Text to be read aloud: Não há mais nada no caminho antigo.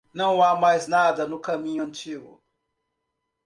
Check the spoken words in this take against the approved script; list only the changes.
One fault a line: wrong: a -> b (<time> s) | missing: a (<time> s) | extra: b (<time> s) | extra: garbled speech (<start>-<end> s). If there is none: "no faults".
no faults